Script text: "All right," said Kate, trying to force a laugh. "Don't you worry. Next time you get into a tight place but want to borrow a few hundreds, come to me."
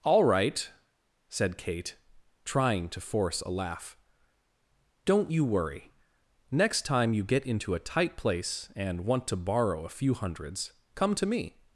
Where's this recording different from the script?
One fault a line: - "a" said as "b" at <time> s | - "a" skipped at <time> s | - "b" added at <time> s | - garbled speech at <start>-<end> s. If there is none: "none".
- "but" said as "and" at 8.8 s